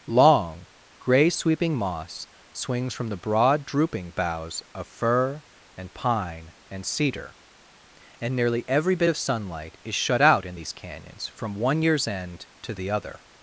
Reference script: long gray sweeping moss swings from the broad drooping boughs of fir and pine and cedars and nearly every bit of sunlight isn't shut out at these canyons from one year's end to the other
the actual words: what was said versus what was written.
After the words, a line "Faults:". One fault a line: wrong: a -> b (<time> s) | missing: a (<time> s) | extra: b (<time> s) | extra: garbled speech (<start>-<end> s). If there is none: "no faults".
long gray sweeping moss swings from the broad drooping boughs of fir and pine and cedar and nearly every bit of sunlight is shut out in these canyons from one year's end to the other
Faults:
wrong: cedars -> cedar (6.8 s)
wrong: isn't -> is (9.8 s)
wrong: at -> in (10.4 s)